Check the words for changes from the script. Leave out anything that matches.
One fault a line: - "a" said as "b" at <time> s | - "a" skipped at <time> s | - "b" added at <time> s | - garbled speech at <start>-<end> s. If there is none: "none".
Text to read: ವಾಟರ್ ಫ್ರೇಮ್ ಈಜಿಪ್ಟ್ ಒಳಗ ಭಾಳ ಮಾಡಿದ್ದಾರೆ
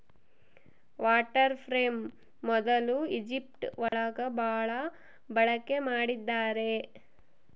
- "ಮೊದ್ಲು" added at 2.4 s
- "ಬಳಕೆ" added at 5.3 s